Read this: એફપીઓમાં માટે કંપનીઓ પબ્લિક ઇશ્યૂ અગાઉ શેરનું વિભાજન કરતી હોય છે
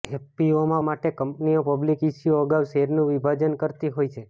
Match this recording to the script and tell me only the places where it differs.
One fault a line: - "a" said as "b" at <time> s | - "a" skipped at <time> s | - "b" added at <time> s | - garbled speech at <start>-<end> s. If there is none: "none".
none